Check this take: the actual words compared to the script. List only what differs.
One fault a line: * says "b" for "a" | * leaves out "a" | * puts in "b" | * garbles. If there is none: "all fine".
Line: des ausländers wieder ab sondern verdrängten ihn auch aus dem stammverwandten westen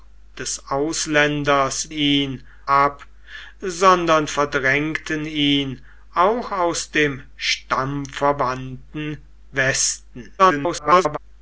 * says "ihn" for "wieder"
* garbles